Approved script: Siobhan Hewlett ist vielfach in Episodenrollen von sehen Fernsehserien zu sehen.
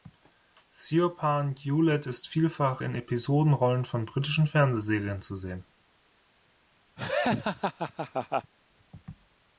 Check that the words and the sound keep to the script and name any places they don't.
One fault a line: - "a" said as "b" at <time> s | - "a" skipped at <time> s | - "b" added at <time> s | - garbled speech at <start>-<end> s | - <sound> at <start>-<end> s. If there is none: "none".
- "sehen" said as "britischen" at 4.0 s
- laugh at 7.0-8.5 s